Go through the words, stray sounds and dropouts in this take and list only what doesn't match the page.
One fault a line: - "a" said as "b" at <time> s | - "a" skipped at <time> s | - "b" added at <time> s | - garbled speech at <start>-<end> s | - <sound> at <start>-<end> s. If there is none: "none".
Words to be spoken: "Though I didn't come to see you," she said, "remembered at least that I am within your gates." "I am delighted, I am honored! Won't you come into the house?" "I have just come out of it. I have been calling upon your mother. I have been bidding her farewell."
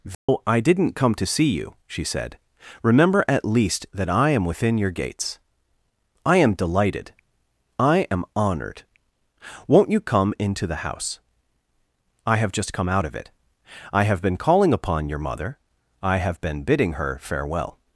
- dropout at 0.1-0.3 s
- "remembered" said as "remember" at 2.8 s